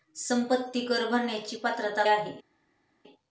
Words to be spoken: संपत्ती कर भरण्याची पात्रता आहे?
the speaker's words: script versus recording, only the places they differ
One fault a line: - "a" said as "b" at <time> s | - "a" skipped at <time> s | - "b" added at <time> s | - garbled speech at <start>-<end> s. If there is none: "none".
none